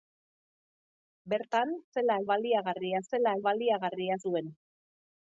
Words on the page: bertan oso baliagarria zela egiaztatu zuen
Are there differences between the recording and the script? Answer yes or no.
yes